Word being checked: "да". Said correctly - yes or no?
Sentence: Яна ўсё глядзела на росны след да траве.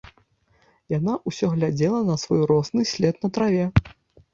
no